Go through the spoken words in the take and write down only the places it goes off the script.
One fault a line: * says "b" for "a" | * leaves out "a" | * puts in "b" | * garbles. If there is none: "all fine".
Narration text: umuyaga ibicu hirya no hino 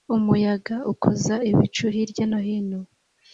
* puts in "ukoza"